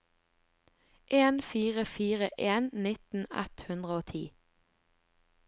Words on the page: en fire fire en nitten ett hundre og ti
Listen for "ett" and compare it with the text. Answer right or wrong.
right